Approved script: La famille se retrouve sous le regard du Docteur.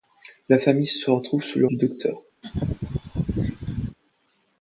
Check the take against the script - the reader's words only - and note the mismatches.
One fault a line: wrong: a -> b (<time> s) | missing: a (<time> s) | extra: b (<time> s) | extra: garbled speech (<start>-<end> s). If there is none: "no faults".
missing: regard (1.7 s)